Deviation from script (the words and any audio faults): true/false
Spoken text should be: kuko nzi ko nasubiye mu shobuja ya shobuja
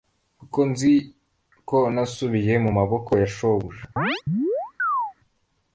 true